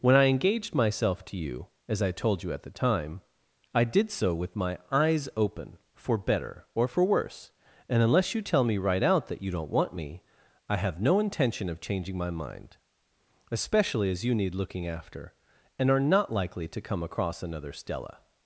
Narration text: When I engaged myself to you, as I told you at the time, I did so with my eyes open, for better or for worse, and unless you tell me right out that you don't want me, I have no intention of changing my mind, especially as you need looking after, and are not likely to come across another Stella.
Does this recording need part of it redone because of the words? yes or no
no